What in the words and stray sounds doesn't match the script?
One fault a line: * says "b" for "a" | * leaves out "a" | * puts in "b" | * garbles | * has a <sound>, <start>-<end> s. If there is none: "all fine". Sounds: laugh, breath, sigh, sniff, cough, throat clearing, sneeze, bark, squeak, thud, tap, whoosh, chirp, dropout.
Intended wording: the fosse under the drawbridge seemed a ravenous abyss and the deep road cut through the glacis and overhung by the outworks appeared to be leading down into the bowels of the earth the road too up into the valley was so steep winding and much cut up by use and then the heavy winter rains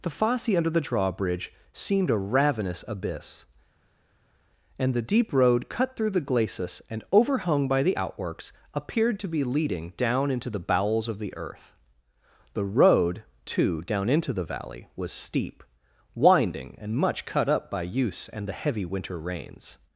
* says "down" for "up"
* leaves out "so"
* leaves out "then"